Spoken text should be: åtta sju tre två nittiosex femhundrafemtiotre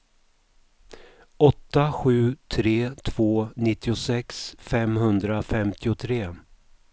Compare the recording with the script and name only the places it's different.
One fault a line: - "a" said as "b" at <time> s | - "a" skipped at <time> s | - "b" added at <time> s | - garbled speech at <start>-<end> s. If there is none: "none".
none